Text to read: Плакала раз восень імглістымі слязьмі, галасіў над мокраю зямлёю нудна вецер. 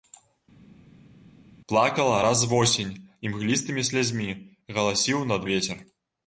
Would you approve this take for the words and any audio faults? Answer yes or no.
no